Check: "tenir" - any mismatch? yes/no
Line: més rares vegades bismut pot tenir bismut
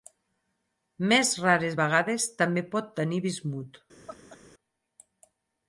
no